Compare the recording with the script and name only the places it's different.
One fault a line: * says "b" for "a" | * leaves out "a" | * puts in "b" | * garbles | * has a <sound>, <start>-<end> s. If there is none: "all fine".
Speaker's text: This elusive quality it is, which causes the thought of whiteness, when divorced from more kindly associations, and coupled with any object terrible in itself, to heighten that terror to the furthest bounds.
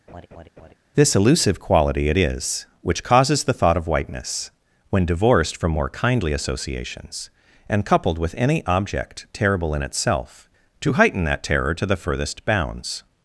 * has a laugh, 0.1-0.7 s